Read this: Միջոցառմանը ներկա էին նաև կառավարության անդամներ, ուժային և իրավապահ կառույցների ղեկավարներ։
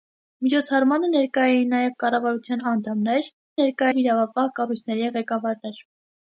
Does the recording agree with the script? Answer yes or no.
no